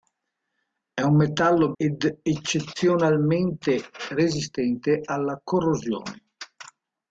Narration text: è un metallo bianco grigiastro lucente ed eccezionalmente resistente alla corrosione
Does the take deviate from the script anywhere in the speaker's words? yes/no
yes